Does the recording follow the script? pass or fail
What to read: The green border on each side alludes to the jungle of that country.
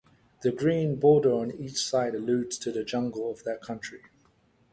pass